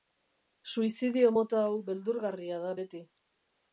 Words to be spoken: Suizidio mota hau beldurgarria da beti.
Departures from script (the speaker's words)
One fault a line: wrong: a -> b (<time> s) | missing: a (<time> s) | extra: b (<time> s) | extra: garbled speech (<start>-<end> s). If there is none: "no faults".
no faults